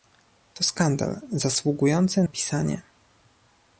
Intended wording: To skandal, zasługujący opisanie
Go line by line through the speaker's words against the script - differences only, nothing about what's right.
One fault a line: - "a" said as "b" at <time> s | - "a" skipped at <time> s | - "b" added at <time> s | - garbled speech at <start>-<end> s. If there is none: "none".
none